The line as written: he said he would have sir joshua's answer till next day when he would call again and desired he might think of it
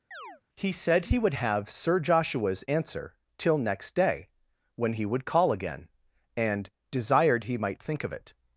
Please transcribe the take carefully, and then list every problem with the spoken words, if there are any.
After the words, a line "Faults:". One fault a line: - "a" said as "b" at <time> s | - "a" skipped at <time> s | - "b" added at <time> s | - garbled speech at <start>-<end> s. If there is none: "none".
he said he would have sir joshua's answer till next day when he would call again and desired he might think of it
Faults:
none